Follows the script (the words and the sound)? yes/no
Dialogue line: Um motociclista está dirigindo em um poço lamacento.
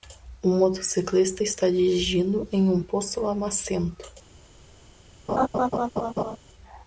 no